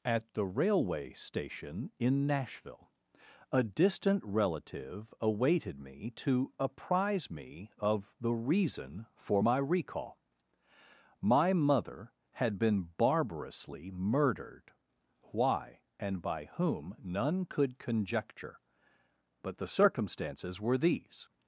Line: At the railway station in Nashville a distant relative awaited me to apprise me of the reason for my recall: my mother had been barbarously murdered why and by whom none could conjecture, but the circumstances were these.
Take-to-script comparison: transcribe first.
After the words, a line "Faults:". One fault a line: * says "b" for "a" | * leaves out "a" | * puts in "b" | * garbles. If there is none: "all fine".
At the railway station in Nashville a distant relative awaited me to apprise me of the reason for my recall: my mother had been barbarously murdered why and by whom none could conjecture, but the circumstances were these.
Faults:
all fine